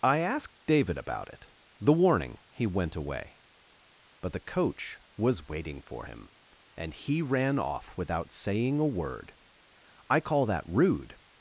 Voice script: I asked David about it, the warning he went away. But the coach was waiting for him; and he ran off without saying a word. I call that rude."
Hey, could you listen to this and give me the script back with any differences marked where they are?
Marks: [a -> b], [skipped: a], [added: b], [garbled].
I asked David about it, the warning he went away. But the coach was waiting for him; and he ran off without saying a word. I call that rude."